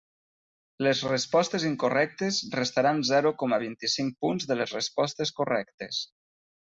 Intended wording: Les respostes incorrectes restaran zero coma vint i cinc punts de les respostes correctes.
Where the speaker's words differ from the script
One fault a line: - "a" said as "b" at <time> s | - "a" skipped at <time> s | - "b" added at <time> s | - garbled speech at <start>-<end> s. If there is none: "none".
none